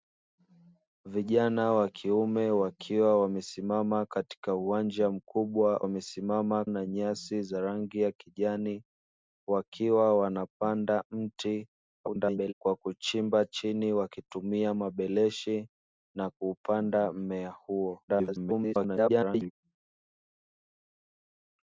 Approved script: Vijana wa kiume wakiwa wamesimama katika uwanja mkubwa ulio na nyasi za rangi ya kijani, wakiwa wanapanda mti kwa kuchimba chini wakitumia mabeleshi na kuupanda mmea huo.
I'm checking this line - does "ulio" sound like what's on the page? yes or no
no